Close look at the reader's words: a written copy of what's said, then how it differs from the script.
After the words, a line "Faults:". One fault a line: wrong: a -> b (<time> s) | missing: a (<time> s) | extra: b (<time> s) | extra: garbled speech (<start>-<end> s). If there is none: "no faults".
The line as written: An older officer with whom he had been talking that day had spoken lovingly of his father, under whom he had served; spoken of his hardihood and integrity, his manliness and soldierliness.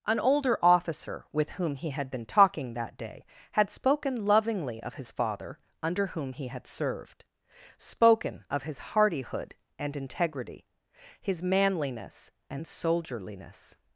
An older officer with whom he had been talking that day had spoken lovingly of his father, under whom he had served; spoken of his hardihood and integrity, his manliness and soldierliness.
Faults:
no faults